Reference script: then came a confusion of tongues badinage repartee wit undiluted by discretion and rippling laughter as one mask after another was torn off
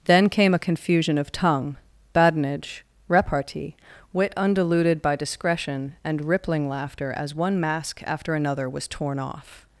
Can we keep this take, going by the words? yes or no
no